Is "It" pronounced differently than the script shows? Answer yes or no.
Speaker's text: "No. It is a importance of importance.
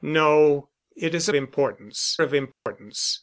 no